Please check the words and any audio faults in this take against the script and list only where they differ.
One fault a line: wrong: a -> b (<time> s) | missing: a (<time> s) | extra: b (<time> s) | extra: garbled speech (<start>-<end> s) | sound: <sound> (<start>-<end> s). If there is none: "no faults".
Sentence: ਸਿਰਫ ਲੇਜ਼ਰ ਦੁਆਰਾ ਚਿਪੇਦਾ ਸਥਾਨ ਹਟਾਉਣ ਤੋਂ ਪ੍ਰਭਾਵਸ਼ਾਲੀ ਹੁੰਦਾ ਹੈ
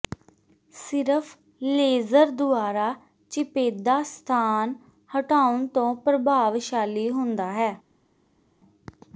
no faults